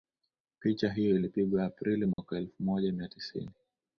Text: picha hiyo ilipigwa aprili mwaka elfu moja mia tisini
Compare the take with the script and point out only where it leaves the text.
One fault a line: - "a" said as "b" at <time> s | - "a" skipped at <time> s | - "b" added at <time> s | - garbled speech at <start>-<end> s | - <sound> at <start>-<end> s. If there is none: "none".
- dropout at 2.1-2.2 s